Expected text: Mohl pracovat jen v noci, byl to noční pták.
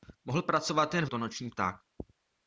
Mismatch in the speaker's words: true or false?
true